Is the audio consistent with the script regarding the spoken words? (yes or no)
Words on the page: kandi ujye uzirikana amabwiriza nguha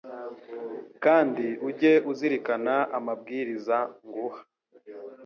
yes